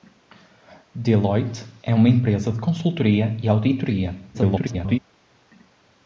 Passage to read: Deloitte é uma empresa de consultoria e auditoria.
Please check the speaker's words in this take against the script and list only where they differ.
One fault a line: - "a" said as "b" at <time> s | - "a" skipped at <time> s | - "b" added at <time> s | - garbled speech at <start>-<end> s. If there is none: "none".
- garbled speech at 4.3-5.0 s